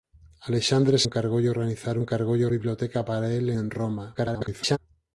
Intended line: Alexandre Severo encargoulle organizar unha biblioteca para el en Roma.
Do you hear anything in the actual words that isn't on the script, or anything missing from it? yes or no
yes